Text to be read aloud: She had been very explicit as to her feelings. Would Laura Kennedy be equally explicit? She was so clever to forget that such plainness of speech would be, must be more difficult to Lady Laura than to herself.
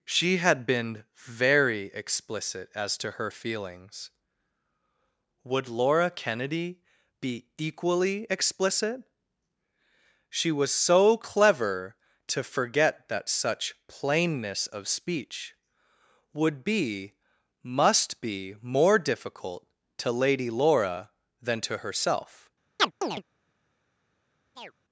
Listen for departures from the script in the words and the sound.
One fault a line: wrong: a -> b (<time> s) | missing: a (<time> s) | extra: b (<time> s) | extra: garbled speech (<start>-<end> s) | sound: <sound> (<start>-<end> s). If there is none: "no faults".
sound: chirp (22.8-23.2 s)
sound: chirp (24.6-24.7 s)